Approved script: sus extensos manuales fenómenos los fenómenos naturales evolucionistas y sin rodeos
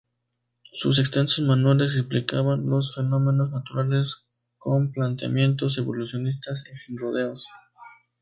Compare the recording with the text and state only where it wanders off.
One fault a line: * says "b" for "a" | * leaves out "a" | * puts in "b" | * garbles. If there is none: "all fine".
* says "explicaban" for "fenómenos"
* puts in "con planteamientos"